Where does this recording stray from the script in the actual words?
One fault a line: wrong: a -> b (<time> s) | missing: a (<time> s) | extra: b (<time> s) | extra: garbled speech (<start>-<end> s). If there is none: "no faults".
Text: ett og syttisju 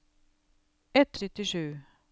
no faults